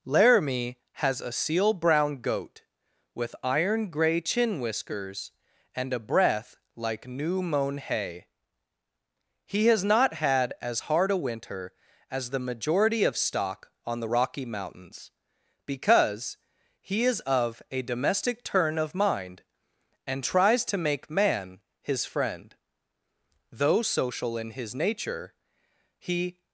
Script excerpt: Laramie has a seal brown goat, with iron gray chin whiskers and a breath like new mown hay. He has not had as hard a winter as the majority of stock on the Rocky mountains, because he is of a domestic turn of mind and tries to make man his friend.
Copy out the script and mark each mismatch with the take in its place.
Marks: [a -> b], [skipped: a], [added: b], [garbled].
Laramie has a seal brown goat, with iron gray chin whiskers and a breath like new mown hay. He has not had as hard a winter as the majority of stock on the Rocky mountains, because he is of a domestic turn of mind and tries to make man his friend. [added: Though social in his nature he]